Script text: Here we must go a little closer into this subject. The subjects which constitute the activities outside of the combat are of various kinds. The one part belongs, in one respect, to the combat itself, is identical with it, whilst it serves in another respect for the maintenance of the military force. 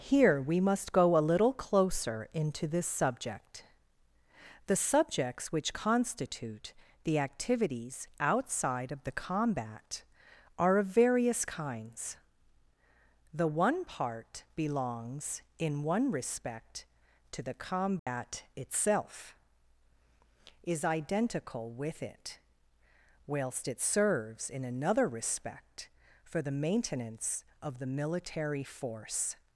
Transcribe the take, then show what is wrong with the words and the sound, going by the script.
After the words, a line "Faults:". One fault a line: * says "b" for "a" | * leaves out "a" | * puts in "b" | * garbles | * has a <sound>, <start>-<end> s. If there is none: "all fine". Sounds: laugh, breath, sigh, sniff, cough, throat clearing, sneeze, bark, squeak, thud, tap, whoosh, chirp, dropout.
Here we must go a little closer into this subject. The subjects which constitute the activities outside of the combat are of various kinds. The one part belongs, in one respect, to the combat itself, is identical with it, whilst it serves in another respect for the maintenance of the military force.
Faults:
* has a dropout, 18.0-18.1 s